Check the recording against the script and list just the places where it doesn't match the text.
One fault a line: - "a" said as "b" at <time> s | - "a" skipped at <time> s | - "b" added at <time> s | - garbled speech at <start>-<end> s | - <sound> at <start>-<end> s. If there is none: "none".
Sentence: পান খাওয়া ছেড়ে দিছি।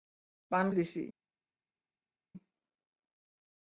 - "খাওয়া ছেড়ে" skipped at 0.7 s